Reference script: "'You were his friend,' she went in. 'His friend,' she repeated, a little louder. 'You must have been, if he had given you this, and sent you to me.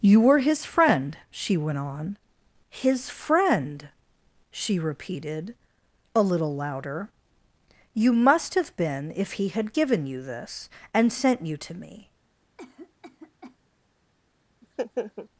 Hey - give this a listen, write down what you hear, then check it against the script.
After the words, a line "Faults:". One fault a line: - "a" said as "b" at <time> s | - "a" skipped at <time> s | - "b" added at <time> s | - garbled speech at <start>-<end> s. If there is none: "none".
"'You were his friend,' she went on. 'His friend,' she repeated, a little louder. 'You must have been, if he had given you this, and sent you to me.
Faults:
- "in" said as "on" at 1.8 s